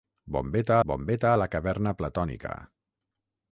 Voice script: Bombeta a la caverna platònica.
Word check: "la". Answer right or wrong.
right